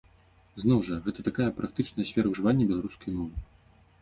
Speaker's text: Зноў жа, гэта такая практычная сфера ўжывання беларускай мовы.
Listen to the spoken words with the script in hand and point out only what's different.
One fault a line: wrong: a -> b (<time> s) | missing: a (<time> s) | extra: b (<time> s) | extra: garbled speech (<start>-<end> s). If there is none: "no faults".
no faults